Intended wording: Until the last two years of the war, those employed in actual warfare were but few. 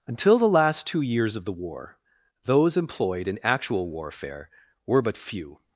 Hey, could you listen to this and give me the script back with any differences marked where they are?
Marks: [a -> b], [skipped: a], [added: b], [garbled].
Until the last two years of the war, those employed in actual warfare were but few.